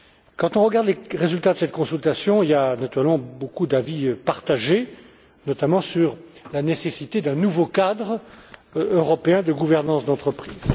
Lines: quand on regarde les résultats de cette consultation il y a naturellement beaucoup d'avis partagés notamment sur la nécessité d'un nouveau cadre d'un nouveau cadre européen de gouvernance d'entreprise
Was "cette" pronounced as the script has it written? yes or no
yes